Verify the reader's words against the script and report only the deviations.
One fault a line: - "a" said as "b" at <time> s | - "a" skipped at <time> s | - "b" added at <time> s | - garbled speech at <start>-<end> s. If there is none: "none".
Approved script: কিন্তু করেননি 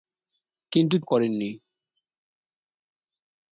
none